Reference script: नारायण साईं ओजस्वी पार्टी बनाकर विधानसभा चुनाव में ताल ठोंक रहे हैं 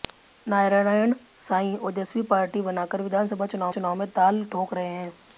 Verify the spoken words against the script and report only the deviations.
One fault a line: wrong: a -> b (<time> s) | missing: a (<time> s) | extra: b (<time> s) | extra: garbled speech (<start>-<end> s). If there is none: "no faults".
extra: चुनाव (3.7 s)